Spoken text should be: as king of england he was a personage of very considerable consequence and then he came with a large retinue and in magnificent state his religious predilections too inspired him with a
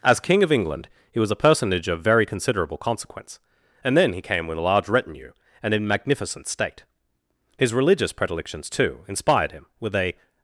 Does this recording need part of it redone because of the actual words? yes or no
no